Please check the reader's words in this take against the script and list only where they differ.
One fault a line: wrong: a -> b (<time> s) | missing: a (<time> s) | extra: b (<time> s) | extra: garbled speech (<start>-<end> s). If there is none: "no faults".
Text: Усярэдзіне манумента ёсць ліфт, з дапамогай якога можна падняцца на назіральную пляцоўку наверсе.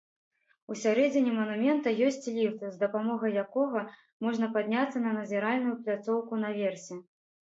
no faults